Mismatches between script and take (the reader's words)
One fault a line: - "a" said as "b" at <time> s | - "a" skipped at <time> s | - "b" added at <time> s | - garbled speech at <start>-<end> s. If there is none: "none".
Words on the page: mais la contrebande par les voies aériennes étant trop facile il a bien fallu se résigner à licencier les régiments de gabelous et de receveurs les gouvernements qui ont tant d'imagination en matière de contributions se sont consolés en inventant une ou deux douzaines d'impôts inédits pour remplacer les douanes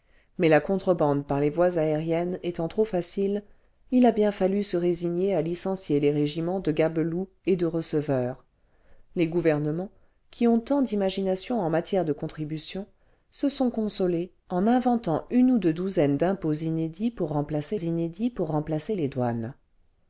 - "inédits pour remplacer" added at 17.7 s